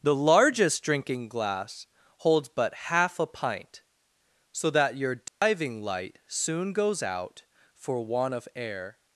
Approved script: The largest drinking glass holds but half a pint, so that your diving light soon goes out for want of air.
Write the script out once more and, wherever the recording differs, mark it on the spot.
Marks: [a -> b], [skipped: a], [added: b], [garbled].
The largest drinking glass holds but half a pint, so that your diving light soon goes out for want of air.